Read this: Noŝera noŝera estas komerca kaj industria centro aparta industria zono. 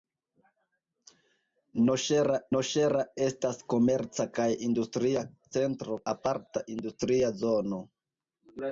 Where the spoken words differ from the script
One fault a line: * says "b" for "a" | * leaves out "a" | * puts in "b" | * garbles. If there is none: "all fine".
all fine